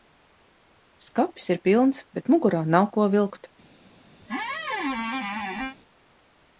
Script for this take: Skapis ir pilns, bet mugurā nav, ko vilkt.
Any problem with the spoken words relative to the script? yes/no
no